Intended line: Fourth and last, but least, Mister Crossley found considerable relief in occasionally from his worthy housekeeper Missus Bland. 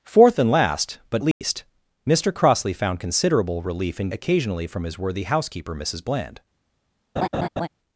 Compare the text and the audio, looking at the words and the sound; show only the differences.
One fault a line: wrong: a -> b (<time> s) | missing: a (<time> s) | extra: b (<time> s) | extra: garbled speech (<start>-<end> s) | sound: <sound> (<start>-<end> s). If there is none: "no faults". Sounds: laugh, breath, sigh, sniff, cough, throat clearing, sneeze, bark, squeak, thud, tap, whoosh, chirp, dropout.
sound: dropout (1.3-1.4 s)
sound: laugh (7.2-7.7 s)